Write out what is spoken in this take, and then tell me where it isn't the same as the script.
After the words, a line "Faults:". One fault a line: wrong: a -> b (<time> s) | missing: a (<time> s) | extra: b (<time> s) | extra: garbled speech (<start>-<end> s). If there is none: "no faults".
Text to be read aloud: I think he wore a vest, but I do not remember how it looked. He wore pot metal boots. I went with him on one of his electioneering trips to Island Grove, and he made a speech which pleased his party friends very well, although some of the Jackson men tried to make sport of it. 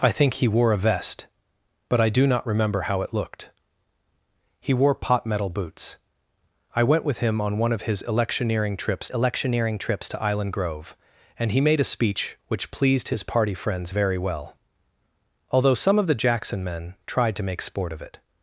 I think he wore a vest, but I do not remember how it looked. He wore pot metal boots. I went with him on one of his electioneering trips electioneering trips to Island Grove, and he made a speech which pleased his party friends very well, although some of the Jackson men tried to make sport of it.
Faults:
extra: electioneering trips (9.1 s)